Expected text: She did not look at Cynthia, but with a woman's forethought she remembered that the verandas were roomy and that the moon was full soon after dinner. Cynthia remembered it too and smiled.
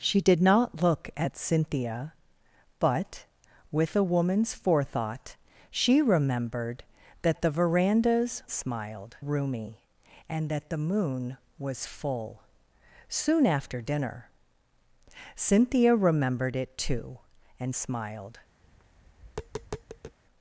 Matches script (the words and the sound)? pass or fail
fail